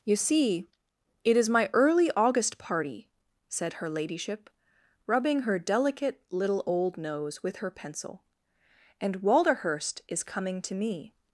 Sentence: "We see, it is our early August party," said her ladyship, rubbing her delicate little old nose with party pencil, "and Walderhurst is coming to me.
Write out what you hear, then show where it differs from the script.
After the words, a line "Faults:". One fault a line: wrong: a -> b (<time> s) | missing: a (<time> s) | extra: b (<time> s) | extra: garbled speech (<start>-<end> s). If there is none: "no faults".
"You see, it is my early August party," said her ladyship, rubbing her delicate little old nose with her pencil, "and Walderhurst is coming to me.
Faults:
wrong: We -> You (0.0 s)
wrong: our -> my (1.5 s)
wrong: party -> her (7.6 s)